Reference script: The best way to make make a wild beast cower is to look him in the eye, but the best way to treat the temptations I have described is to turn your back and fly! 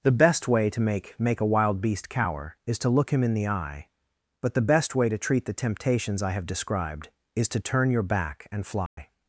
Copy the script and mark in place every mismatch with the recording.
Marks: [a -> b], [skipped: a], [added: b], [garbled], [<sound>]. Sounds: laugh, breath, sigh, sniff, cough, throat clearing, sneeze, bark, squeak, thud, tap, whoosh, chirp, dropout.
The best way to make make a wild beast cower is to look him in the eye, but the best way to treat the temptations I have described is to turn your back and fly! [dropout]